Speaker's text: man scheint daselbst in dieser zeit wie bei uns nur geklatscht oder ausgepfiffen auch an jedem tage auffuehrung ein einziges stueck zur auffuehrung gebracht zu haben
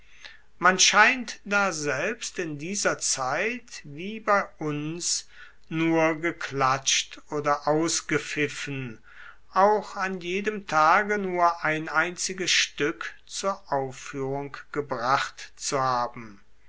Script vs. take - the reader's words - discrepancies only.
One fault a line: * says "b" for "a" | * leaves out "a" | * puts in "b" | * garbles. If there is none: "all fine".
* says "nur" for "auffuehrung"